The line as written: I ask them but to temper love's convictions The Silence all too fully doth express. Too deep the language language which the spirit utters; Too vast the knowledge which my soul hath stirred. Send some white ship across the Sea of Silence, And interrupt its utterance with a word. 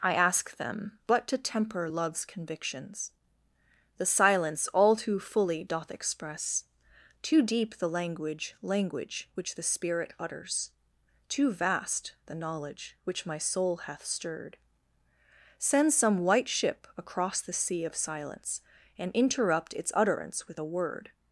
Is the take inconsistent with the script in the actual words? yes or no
no